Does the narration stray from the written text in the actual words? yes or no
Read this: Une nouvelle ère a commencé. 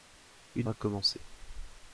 yes